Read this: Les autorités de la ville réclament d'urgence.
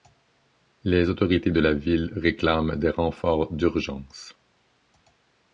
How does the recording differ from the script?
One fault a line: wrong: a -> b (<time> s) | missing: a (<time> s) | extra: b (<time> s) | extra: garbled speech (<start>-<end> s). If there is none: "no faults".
extra: des renforts (2.8 s)